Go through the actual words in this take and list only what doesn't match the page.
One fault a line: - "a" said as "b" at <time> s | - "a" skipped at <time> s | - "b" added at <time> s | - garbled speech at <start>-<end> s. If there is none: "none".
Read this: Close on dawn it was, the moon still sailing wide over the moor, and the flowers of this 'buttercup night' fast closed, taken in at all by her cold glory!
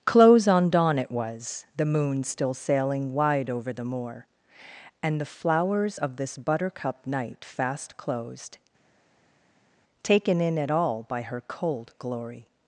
none